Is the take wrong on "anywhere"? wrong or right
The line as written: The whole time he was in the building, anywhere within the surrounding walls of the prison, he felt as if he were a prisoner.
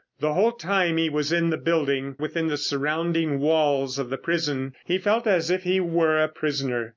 wrong